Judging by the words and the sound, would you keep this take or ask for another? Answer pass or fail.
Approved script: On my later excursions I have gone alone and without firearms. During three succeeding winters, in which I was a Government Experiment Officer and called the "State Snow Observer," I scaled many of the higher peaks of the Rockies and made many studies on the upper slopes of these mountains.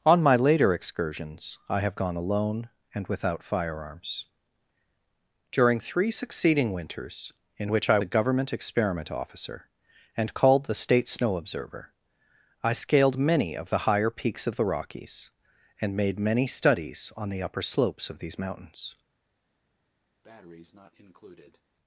fail